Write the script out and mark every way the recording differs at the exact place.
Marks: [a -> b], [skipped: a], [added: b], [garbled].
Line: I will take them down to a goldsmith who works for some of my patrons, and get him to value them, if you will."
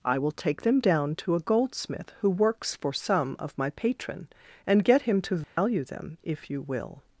I will take them down to a goldsmith who works for some of my [patrons, -> patron] and get him to value them, if you will."